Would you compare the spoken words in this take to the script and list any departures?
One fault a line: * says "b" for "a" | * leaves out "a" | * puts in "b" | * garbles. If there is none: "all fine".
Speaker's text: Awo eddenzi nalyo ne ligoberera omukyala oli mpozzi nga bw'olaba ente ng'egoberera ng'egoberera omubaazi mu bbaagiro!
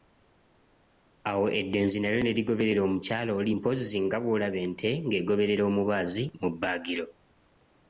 * leaves out "ng'egoberera"